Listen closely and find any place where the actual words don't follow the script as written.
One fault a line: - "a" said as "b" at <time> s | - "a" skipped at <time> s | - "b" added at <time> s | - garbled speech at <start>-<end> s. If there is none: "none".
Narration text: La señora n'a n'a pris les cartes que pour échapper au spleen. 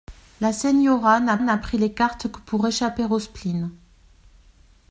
none